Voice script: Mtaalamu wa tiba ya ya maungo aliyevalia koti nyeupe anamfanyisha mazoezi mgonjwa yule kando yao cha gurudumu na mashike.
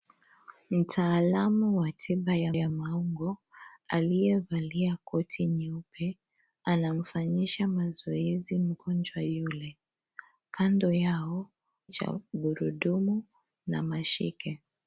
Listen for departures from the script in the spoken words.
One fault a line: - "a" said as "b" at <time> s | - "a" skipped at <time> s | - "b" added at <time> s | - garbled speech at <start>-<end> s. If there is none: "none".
none